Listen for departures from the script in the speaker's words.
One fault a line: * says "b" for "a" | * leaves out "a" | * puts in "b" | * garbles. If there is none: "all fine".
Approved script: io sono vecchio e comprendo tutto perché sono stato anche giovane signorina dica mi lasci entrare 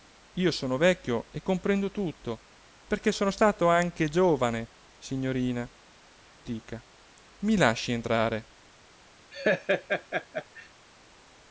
all fine